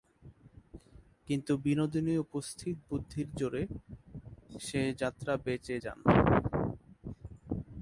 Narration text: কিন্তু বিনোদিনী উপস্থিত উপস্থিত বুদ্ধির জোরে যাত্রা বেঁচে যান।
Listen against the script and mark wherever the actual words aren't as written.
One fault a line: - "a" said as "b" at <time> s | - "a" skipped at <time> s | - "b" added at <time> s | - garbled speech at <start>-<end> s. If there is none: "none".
- "উপস্থিত" skipped at 2.8 s
- "সে" added at 4.6 s